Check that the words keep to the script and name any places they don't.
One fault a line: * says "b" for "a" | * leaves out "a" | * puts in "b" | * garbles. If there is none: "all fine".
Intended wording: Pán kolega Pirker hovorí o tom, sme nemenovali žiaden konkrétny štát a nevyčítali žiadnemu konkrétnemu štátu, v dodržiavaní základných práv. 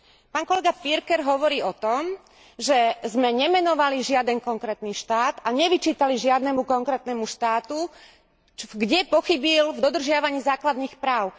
* puts in "že"
* puts in "kde pochybil"